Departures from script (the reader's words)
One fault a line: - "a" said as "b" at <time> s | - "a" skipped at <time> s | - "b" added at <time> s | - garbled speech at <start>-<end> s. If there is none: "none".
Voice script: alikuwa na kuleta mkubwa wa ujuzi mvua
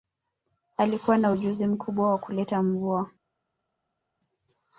- "kuleta" said as "ujuzi" at 1.3 s
- "ujuzi" said as "kuleta" at 2.2 s